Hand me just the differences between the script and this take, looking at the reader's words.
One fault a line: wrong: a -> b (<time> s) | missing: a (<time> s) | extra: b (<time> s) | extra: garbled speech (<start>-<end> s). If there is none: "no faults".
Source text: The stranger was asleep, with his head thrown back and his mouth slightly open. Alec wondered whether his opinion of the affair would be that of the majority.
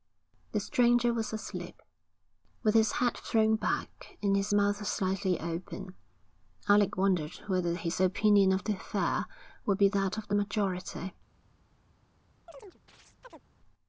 no faults